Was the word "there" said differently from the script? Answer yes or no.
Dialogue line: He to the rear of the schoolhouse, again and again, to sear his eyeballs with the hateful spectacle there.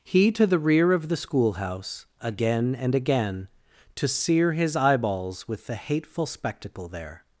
no